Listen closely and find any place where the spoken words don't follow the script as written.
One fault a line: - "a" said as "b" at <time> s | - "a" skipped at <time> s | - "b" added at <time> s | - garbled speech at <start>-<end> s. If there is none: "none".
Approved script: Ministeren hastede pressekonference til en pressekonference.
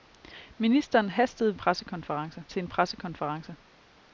none